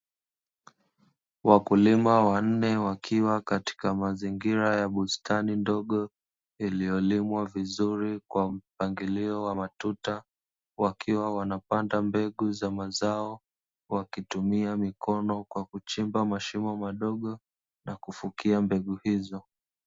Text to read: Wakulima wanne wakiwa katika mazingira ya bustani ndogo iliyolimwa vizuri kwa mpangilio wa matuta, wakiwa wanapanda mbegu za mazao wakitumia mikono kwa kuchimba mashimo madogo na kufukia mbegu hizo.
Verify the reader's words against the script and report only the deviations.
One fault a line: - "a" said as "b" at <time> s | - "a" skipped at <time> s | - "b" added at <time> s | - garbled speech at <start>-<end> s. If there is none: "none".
none